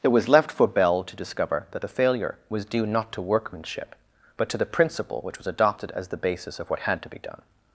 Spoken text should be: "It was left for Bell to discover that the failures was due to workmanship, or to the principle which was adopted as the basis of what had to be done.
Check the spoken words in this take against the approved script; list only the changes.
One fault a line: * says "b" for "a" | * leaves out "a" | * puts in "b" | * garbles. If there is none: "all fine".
* says "failure" for "failures"
* puts in "not"
* says "but" for "or"